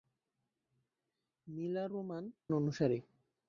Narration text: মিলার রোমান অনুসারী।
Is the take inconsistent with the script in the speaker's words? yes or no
no